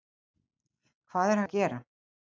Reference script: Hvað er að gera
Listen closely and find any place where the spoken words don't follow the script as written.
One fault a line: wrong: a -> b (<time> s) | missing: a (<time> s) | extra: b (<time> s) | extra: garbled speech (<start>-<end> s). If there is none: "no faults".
no faults